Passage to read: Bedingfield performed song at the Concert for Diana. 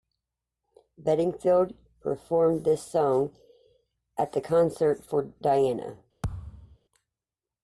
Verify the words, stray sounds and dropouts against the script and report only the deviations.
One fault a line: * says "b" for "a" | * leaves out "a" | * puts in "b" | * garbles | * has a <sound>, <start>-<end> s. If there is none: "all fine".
* puts in "this"
* has a thud, 6.2-6.8 s